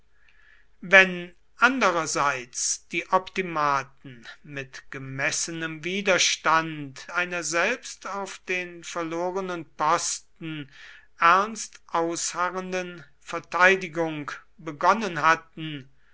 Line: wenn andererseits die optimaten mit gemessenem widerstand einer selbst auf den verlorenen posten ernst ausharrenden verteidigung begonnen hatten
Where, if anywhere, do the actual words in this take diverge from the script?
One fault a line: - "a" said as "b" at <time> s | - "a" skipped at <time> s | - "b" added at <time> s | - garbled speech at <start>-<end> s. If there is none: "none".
none